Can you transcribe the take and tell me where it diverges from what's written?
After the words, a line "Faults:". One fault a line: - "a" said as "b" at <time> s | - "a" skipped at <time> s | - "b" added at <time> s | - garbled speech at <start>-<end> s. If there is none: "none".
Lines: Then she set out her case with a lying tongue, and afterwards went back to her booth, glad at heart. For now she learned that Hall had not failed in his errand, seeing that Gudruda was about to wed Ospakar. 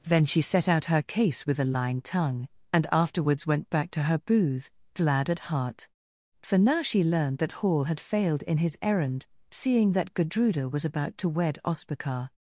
Then she set out her case with a lying tongue, and afterwards went back to her booth, glad at heart. For now she learned that Hall had failed in his errand, seeing that Gudruda was about to wed Ospakar.
Faults:
- "not" skipped at 8.0 s